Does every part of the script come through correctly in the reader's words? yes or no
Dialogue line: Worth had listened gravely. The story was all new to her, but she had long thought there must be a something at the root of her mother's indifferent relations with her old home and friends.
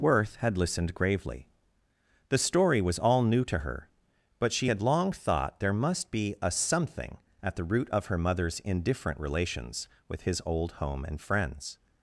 no